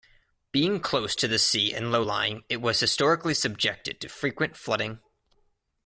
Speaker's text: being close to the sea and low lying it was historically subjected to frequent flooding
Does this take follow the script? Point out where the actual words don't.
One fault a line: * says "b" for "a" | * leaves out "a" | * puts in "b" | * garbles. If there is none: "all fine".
all fine